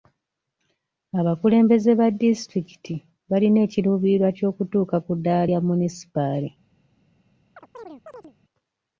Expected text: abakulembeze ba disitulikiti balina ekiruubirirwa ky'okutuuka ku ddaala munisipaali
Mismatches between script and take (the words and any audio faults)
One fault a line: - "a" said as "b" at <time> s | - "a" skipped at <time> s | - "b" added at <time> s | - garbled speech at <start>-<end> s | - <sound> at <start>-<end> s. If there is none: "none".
- "lya" added at 5.5 s
- chirp at 7.6-8.3 s